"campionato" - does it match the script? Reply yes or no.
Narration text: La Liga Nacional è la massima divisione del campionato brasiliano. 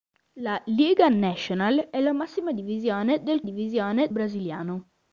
no